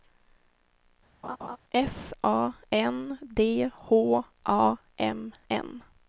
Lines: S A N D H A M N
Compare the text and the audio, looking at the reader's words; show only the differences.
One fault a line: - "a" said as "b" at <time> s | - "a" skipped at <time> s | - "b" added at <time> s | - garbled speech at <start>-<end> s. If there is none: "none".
none